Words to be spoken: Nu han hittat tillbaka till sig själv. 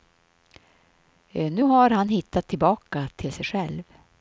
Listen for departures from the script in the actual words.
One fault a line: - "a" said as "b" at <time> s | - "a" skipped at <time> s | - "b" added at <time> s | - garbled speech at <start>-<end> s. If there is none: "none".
- "har" added at 1.6 s